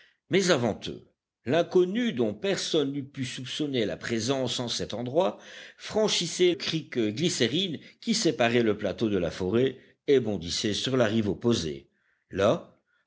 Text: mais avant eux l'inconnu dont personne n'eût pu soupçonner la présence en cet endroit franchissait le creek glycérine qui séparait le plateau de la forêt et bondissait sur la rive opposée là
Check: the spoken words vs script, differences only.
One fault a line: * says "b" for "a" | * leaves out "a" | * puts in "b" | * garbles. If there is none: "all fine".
* leaves out "le"